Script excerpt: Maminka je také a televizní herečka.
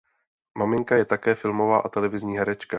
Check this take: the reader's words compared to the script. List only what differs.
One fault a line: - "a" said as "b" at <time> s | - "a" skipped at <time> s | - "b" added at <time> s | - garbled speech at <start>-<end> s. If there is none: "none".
- "filmová" added at 1.4 s